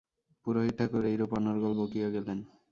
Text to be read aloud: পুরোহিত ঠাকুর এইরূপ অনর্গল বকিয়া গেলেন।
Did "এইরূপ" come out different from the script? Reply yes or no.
no